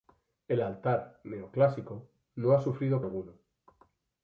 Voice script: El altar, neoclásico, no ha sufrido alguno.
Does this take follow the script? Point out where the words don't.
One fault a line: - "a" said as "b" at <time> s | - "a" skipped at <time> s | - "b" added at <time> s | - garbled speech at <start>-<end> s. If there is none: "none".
none